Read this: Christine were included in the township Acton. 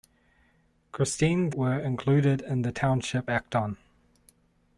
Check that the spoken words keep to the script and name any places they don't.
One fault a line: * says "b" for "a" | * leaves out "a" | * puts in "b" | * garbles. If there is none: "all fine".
all fine